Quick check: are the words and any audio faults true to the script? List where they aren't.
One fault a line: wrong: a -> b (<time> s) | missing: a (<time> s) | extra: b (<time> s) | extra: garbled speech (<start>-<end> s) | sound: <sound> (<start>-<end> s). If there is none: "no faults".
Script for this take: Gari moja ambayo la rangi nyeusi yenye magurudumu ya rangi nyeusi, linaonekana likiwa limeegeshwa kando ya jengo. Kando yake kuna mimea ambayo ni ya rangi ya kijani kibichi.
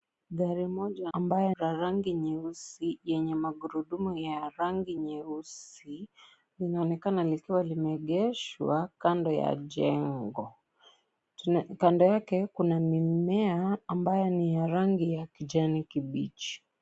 no faults